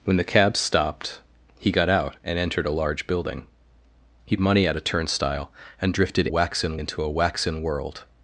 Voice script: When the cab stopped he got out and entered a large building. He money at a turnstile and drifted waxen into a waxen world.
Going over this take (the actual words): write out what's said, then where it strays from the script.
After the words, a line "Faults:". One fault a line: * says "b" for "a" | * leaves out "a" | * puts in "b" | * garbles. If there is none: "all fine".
When the cab stopped he got out and entered a large building. He money at a turnstile and drifted waxen into a waxen world.
Faults:
all fine